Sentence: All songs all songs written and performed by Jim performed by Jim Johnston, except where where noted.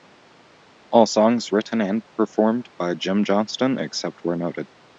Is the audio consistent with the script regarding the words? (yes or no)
no